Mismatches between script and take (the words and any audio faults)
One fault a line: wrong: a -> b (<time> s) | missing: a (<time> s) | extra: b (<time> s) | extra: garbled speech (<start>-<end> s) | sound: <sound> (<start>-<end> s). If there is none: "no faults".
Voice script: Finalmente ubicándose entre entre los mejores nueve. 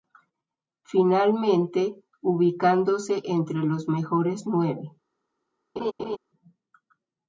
missing: entre (3.6 s)
sound: laugh (5.8-6.2 s)